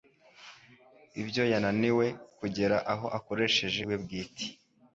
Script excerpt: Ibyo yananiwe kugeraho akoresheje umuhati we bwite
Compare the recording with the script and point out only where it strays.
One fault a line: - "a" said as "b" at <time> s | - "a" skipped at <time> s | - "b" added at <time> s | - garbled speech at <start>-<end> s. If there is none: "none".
- "umuhati" skipped at 3.8 s